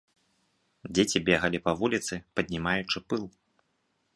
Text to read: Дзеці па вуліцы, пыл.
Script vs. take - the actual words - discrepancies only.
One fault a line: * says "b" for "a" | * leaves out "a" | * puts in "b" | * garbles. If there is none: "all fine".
* puts in "бегалі"
* puts in "паднімаючы"